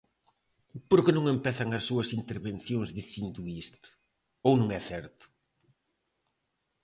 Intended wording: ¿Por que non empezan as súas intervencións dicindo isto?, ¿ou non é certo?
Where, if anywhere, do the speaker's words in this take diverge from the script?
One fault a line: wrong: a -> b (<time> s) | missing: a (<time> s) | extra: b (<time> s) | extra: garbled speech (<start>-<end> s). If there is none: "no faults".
no faults